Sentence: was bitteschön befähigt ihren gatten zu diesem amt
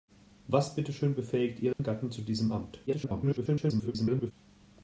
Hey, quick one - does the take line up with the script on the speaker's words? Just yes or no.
no